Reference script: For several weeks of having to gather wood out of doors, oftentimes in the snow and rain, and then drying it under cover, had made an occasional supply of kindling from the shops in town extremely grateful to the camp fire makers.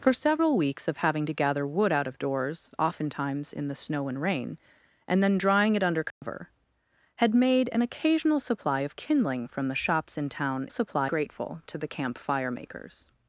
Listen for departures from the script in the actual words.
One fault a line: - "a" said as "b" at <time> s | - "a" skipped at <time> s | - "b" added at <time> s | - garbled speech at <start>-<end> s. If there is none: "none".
- "extremely" said as "supply" at 10.7 s